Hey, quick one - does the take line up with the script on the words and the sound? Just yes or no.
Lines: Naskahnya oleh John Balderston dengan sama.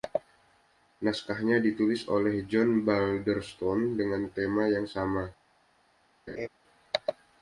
no